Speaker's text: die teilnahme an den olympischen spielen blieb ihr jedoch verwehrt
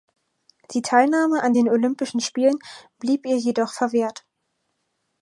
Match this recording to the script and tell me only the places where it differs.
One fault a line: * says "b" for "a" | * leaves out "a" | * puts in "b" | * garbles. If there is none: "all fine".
all fine